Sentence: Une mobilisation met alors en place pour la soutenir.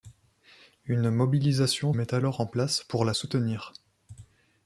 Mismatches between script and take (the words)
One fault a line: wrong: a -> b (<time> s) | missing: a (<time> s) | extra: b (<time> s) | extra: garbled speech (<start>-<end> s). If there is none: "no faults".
no faults